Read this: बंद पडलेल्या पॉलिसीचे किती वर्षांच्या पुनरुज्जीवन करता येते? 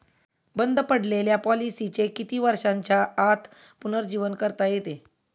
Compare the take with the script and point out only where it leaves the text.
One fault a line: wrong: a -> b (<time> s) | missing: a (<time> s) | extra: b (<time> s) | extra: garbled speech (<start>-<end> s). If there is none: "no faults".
extra: आत (3.2 s)